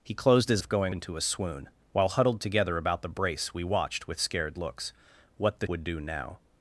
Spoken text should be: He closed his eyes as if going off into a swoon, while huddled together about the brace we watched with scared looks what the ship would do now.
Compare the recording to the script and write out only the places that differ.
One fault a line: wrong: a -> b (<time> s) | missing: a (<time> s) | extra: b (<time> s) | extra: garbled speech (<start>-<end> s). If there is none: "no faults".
missing: eyes as (0.6 s)
missing: off (0.9 s)
missing: ship (5.7 s)